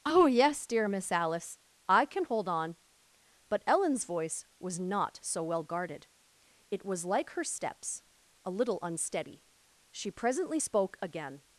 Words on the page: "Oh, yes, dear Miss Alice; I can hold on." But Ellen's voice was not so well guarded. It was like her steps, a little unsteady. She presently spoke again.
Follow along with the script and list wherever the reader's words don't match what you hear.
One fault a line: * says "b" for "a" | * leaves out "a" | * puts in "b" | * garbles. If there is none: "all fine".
all fine